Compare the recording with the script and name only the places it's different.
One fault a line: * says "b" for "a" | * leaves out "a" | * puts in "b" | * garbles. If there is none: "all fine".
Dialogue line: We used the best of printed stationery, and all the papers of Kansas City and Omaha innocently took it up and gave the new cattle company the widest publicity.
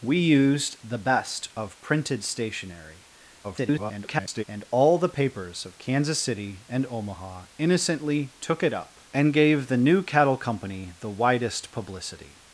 * garbles